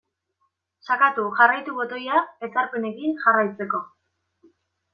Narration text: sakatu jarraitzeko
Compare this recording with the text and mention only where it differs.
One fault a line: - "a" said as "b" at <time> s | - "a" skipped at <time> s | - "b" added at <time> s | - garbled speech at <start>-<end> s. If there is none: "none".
- "jarraitu botoia ezarpenekin" added at 1.4 s